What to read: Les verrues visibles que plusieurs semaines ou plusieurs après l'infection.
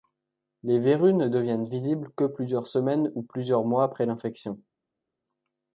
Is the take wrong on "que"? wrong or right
right